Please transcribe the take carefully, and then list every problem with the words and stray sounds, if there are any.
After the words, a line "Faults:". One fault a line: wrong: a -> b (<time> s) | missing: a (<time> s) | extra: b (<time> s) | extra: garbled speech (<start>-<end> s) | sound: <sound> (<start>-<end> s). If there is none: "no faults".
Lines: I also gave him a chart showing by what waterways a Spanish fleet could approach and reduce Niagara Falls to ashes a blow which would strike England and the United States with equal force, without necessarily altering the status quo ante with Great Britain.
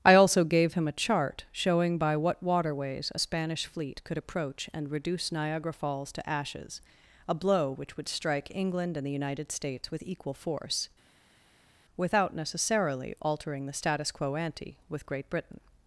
I also gave him a chart showing by what waterways a Spanish fleet could approach and reduce Niagara Falls to ashes a blow which would strike England and the United States with equal force, without necessarily altering the status quo ante with Great Britain.
Faults:
no faults